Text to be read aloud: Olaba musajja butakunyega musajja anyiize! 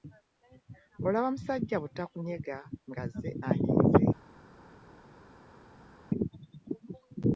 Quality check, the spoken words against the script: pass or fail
fail